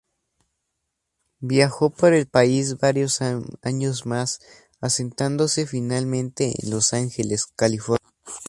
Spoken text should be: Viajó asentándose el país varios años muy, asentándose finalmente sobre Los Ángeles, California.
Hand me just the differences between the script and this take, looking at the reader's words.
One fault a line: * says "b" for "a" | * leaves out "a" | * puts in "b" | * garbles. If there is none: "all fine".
* says "por" for "asentándose"
* says "más" for "muy"
* says "en" for "sobre"